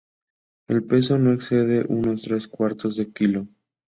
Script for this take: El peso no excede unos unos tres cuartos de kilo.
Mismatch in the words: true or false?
true